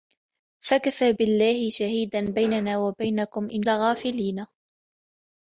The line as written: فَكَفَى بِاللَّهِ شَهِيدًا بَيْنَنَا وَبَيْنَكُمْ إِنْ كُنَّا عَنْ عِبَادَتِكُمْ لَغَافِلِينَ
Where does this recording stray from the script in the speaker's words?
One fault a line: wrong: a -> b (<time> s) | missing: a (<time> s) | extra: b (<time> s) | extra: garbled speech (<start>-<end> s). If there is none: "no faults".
missing: كُنَّا عَنْ عِبَادَتِكُمْ (3.6 s)